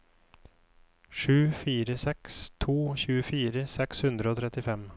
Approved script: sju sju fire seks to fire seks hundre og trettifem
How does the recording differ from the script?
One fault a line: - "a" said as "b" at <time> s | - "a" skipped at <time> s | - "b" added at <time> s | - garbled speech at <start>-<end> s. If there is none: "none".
- "sju" skipped at 1.4 s
- "fire" said as "tjuefire" at 3.0 s